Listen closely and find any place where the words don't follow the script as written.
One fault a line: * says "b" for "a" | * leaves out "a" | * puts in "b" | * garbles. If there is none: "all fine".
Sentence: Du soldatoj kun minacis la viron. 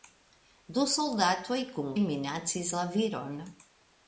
all fine